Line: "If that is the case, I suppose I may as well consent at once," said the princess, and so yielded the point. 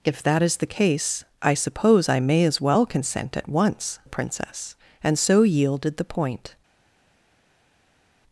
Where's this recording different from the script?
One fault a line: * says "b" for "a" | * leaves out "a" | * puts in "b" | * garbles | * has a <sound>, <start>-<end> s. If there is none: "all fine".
* leaves out "said"